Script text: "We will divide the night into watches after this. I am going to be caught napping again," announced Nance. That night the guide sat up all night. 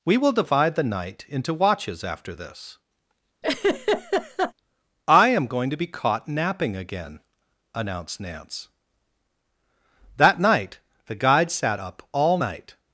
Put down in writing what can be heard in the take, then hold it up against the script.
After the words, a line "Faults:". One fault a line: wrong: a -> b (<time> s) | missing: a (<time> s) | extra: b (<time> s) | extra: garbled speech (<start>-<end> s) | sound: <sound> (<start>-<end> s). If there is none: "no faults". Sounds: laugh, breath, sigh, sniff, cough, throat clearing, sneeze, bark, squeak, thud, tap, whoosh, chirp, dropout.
"We will divide the night into watches after this. I am going to be caught napping again," announced Nance. That night the guide sat up all night.
Faults:
sound: laugh (3.4-4.5 s)